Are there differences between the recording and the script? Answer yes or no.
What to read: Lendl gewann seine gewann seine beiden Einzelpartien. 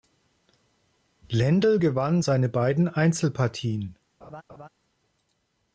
yes